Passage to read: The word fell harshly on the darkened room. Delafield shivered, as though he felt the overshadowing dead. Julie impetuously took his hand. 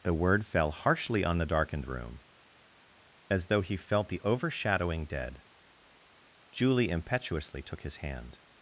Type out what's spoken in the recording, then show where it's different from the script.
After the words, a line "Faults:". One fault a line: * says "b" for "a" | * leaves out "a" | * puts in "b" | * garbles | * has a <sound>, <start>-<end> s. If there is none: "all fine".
The word fell harshly on the darkened room. As though he felt the overshadowing dead. Julie impetuously took his hand.
Faults:
* leaves out "Delafield shivered"